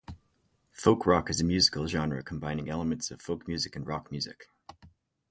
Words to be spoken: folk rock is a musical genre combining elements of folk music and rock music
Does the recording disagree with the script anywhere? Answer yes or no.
no